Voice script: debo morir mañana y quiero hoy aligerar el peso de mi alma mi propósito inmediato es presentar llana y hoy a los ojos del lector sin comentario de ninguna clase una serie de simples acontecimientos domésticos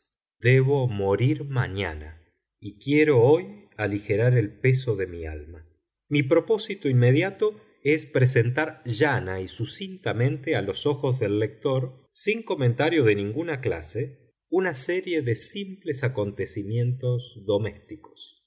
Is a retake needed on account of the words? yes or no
yes